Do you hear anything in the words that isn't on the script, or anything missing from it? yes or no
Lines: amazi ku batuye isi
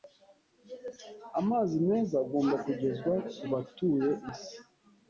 yes